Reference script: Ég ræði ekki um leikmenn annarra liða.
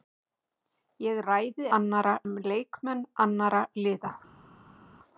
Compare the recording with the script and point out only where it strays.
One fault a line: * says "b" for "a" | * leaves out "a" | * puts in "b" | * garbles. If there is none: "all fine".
* says "annarra" for "ekki"